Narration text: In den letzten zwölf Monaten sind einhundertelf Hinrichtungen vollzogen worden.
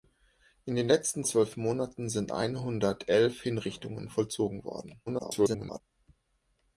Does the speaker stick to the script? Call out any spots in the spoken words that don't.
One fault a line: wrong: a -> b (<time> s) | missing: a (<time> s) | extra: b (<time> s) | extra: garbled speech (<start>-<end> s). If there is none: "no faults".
extra: garbled speech (5.1-5.8 s)